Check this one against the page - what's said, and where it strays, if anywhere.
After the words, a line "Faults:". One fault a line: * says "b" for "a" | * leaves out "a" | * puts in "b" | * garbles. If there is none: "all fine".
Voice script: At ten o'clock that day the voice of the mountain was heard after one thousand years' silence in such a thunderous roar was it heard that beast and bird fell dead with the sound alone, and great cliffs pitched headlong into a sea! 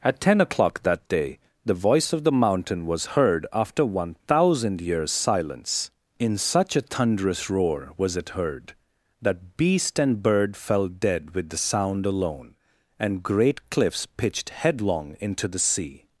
At ten o'clock that day the voice of the mountain was heard after one thousand years' silence in such a thunderous roar was it heard that beast and bird fell dead with the sound alone, and great cliffs pitched headlong into the sea!
Faults:
* says "the" for "a"